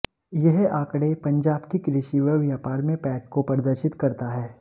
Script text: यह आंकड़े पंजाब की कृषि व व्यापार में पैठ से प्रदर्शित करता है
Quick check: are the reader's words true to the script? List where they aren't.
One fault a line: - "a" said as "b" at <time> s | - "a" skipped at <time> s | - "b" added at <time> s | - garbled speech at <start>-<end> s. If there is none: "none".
- "से" said as "को" at 3.3 s